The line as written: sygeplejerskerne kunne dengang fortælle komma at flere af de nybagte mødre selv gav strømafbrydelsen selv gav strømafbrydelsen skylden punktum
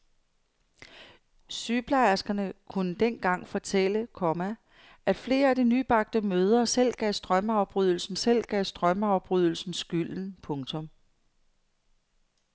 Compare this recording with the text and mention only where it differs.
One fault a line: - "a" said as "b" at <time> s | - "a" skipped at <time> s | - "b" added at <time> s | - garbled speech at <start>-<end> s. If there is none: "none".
none